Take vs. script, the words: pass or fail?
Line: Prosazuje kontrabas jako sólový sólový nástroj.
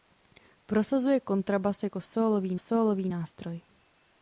pass